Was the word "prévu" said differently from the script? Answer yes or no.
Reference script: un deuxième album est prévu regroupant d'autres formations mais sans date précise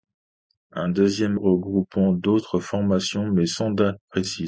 yes